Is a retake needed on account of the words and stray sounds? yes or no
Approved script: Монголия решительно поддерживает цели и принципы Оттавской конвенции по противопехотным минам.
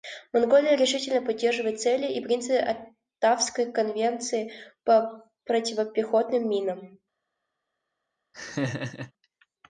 yes